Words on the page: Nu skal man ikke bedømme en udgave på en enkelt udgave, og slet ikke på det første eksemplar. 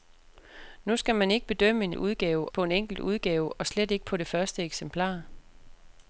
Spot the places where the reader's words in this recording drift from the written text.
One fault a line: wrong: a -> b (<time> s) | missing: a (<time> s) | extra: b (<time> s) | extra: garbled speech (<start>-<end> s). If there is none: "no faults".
no faults